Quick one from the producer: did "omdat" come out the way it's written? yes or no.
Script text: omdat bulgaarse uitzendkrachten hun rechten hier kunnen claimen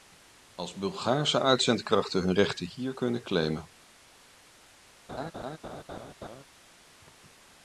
no